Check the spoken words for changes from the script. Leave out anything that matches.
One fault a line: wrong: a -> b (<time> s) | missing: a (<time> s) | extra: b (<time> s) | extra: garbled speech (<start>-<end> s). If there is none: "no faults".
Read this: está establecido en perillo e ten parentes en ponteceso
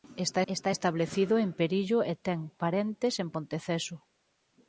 extra: está (0.5 s)